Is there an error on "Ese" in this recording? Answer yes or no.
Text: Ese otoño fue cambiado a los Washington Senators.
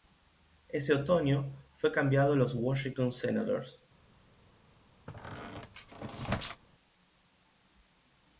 no